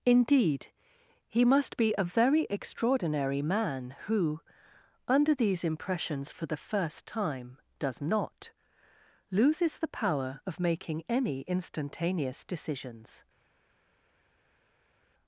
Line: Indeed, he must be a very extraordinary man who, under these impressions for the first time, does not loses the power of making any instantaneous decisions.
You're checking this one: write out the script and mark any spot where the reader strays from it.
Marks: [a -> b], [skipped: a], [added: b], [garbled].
Indeed, he must be a very extraordinary man who, under these impressions for the first time, does not loses the power of making any instantaneous decisions.